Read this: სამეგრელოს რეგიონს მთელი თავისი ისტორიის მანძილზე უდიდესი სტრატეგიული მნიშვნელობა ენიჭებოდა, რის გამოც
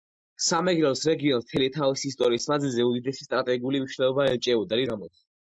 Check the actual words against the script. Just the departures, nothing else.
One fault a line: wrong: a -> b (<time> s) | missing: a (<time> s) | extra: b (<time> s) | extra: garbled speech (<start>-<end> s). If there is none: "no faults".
missing: რის (4.8 s)